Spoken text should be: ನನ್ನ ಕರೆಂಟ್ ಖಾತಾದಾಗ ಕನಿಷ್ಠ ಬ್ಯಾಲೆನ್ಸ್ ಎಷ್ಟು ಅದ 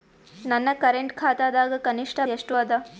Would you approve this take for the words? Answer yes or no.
no